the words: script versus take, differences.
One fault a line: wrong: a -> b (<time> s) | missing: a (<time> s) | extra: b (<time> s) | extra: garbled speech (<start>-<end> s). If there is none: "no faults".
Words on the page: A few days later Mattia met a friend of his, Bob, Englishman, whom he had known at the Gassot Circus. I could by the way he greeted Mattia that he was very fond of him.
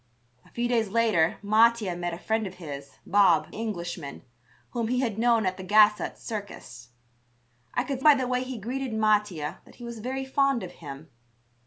no faults